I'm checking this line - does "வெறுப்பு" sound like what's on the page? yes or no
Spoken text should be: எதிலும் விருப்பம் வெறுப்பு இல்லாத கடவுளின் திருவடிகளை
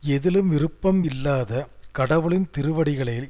no